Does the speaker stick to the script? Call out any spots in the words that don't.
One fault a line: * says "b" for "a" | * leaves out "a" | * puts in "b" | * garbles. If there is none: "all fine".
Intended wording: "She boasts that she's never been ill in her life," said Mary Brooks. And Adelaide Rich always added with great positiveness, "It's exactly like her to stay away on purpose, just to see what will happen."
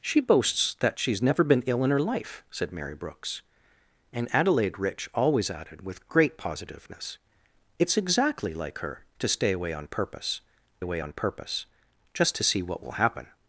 * puts in "away on purpose"